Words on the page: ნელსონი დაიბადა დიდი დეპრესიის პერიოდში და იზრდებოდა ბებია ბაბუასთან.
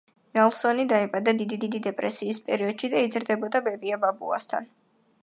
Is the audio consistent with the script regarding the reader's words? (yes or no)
no